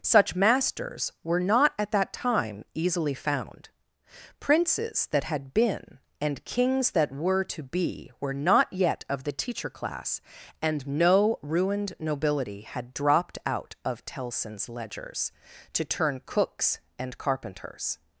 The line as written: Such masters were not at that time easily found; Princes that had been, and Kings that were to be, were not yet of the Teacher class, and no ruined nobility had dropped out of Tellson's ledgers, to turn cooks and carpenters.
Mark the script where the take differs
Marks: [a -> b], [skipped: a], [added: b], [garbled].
Such masters were not at that time easily found; Princes that had been, and Kings that were to be, were not yet of the Teacher class, and no ruined nobility had dropped out of Tellson's ledgers, to turn cooks and carpenters.